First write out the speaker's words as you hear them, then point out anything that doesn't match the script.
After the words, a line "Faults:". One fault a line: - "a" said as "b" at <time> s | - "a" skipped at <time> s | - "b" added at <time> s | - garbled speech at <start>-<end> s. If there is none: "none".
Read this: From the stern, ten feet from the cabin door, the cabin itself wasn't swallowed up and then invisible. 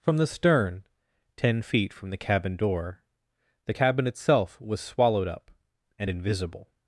From the stern, ten feet from the cabin door, the cabin itself was swallowed up and invisible.
Faults:
- "wasn't" said as "was" at 4.6 s
- "then" skipped at 6.1 s